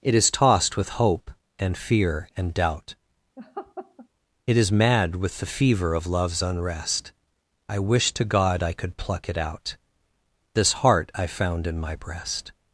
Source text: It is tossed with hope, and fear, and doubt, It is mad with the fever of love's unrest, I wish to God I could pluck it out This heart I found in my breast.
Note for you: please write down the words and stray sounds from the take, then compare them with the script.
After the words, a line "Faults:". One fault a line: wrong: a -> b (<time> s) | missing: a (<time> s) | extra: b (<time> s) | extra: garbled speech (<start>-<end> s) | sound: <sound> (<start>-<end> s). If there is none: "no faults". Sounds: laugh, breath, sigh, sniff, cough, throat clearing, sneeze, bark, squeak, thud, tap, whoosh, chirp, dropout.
It is tossed with hope, and fear, and doubt, It is mad with the fever of love's unrest, I wish to God I could pluck it out This heart I found in my breast.
Faults:
sound: laugh (3.4-4.1 s)